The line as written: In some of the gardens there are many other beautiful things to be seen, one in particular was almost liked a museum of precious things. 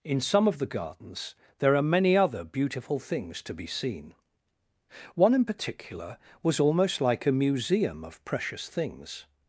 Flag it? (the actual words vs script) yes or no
yes